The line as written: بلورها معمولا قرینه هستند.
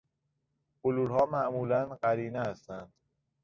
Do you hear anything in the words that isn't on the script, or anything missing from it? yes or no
no